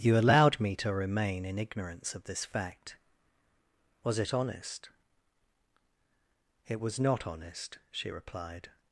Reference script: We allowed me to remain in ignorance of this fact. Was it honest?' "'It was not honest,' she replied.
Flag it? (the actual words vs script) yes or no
yes